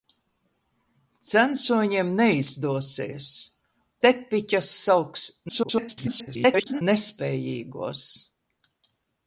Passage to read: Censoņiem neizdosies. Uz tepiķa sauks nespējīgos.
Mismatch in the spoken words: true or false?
true